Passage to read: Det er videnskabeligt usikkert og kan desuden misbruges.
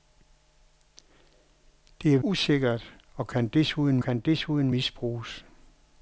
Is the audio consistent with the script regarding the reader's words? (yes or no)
no